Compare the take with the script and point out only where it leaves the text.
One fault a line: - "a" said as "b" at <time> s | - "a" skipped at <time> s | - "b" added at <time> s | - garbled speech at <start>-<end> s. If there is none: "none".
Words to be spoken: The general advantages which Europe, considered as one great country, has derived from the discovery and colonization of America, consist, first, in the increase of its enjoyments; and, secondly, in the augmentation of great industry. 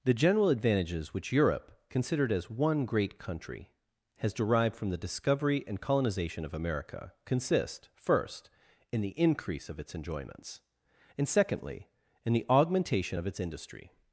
- "great" said as "its" at 13.3 s